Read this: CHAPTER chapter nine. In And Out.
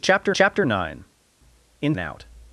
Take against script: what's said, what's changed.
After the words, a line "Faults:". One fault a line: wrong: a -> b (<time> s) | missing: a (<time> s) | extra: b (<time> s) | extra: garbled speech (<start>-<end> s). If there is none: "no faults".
CHAPTER chapter nine. In And Out.
Faults:
no faults